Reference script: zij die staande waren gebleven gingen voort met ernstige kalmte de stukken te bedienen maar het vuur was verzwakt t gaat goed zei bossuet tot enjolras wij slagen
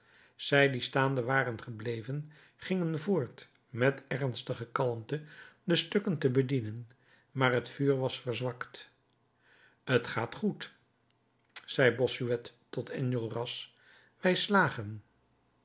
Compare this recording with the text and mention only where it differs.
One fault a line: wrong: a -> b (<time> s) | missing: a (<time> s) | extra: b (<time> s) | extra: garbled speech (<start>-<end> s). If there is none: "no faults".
no faults